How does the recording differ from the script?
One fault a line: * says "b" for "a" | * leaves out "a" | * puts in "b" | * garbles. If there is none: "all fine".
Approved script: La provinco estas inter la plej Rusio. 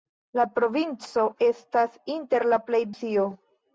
all fine